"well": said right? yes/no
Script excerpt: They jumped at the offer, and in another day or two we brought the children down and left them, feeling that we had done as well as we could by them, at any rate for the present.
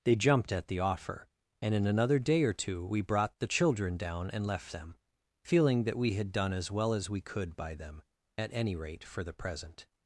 yes